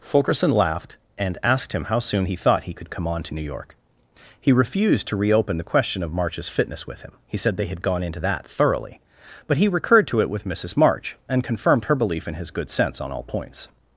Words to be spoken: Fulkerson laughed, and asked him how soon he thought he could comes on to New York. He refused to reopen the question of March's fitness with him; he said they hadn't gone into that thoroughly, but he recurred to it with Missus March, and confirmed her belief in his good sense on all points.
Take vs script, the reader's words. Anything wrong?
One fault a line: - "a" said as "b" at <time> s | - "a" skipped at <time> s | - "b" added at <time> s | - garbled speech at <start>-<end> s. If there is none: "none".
- "comes" said as "come" at 2.9 s
- "hadn't" said as "had" at 7.7 s